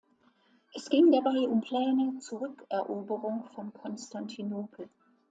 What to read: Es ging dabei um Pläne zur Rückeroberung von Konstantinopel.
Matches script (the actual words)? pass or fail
pass